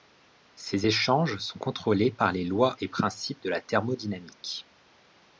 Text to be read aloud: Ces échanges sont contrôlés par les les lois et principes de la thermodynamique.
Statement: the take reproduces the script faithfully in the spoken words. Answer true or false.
false